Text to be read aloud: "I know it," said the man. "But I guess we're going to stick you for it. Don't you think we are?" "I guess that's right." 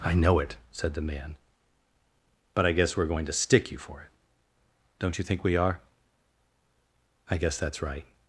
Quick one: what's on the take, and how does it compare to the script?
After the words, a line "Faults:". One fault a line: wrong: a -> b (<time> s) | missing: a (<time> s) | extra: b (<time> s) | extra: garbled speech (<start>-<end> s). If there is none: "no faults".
"I know it," said the man. "But I guess we're going to stick you for it. Don't you think we are?" "I guess that's right."
Faults:
no faults